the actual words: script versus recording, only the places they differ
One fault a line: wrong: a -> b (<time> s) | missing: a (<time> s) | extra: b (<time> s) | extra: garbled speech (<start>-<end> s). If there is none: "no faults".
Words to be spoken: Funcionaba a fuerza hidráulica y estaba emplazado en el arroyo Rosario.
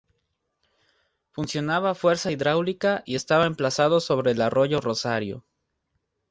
wrong: en -> sobre (4.0 s)